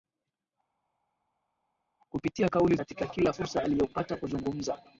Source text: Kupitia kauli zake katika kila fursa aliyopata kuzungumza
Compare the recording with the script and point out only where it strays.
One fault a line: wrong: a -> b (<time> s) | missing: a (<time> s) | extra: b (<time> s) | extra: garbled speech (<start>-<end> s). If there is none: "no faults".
missing: zake (2.8 s)